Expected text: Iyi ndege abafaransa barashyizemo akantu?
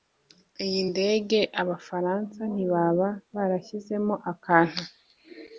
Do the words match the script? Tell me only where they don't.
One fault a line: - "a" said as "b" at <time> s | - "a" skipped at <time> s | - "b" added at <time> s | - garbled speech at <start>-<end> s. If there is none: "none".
- "ntibaba" added at 2.5 s